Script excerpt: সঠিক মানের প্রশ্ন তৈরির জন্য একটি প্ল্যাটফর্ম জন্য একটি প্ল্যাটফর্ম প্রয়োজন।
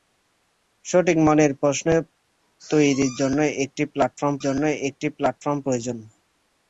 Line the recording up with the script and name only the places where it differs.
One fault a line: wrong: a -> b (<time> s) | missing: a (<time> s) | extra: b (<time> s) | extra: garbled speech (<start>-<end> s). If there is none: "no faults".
no faults